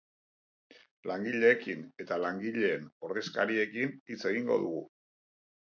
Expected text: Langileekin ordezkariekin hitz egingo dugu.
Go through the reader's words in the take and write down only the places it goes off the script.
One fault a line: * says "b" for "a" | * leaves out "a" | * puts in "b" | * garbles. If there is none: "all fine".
* puts in "eta langileen"